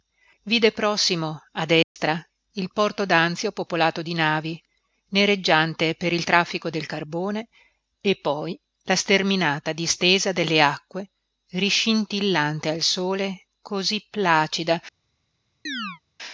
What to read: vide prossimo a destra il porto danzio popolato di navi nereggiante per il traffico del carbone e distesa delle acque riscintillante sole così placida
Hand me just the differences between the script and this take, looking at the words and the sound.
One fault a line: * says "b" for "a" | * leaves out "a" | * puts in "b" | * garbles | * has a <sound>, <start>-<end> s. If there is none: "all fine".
* has a dropout, 1.8-2.0 s
* puts in "poi la sterminata"
* puts in "al"
* has a chirp, 15.7-16.0 s